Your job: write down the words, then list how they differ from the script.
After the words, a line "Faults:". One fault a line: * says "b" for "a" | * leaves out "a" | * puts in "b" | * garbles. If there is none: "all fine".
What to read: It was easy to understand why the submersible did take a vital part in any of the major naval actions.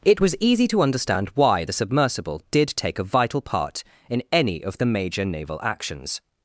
It was easy to understand why the submersible did take a vital part in any of the major naval actions.
Faults:
all fine